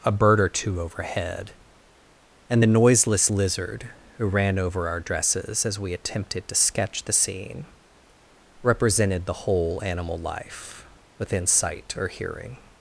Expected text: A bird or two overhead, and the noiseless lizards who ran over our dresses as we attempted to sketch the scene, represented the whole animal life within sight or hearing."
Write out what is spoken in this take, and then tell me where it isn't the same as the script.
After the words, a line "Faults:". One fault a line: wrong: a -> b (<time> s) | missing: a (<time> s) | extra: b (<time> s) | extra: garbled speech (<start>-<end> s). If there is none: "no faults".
A bird or two overhead, and the noiseless lizard who ran over our dresses as we attempted to sketch the scene, represented the whole animal life within sight or hearing."
Faults:
wrong: lizards -> lizard (3.3 s)